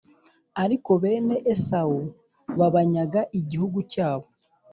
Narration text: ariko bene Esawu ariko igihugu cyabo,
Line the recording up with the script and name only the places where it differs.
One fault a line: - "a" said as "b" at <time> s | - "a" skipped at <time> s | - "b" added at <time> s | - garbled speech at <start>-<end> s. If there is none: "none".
- "ariko" said as "babanyaga" at 2.6 s